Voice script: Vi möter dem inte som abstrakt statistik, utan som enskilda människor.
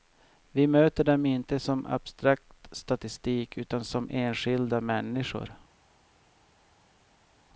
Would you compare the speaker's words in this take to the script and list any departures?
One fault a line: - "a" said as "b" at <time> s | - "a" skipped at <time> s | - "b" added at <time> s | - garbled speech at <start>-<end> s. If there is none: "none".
none